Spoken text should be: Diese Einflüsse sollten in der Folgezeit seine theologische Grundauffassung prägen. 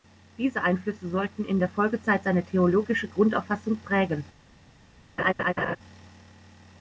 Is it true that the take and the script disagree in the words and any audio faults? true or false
true